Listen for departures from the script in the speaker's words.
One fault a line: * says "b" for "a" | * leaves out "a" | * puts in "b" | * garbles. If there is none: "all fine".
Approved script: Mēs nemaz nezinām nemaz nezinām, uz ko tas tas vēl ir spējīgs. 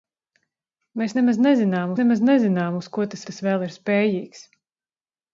all fine